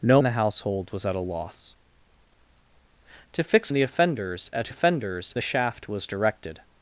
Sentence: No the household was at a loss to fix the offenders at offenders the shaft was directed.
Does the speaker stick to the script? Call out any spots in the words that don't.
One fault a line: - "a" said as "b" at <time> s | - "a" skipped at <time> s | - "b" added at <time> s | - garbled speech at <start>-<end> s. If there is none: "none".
none